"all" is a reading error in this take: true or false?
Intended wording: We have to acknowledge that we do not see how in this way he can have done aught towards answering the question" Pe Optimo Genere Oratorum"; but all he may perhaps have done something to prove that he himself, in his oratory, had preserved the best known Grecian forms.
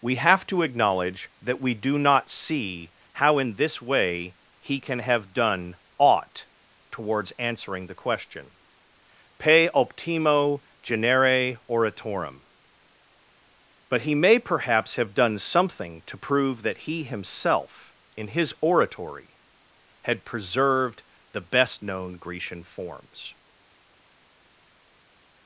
true